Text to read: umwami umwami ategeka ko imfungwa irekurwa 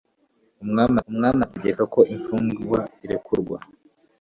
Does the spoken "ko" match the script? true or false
true